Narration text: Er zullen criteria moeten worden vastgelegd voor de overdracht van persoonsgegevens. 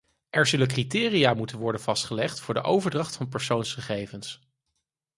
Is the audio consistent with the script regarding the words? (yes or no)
yes